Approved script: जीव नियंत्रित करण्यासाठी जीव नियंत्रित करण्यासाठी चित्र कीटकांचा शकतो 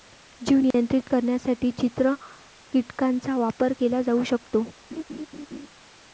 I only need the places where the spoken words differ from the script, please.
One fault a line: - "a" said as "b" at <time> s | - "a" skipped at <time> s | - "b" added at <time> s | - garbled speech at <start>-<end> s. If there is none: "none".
- "जीव नियंत्रित करण्यासाठी चित्र कीटकांचा" said as "चित्र कीटकांचा वापर केला जाऊ" at 1.7 s